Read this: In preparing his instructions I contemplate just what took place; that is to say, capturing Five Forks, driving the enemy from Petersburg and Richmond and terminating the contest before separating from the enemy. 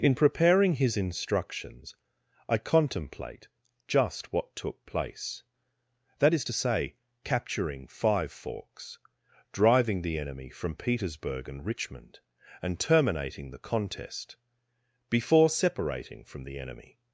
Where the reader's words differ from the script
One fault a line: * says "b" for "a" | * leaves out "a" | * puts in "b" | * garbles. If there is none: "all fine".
all fine